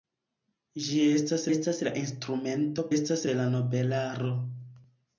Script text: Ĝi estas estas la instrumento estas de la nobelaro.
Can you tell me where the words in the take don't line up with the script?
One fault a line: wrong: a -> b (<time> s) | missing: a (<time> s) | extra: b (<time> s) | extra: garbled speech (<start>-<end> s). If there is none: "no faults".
no faults